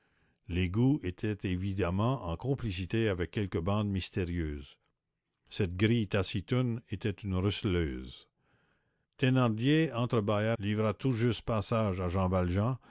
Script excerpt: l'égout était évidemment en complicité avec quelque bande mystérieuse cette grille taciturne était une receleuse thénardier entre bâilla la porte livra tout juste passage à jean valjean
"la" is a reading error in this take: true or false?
true